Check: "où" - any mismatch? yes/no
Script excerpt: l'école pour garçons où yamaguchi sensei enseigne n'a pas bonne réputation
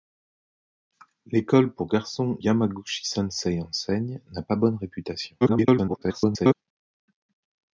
yes